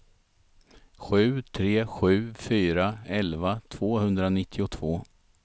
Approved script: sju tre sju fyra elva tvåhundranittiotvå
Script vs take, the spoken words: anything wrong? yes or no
no